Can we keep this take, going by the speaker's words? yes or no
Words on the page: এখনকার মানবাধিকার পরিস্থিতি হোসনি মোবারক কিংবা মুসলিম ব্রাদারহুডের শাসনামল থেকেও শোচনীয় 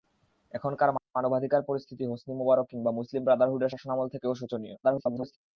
no